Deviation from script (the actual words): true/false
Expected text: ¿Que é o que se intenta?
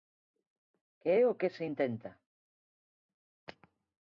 false